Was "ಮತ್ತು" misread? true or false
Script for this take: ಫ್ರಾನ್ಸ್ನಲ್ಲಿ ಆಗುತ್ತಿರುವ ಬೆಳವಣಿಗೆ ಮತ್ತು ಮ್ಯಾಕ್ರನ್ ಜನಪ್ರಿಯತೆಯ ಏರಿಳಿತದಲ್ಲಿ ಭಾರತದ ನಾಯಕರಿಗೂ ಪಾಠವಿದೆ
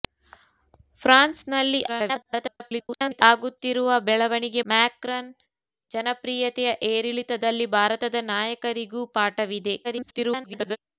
true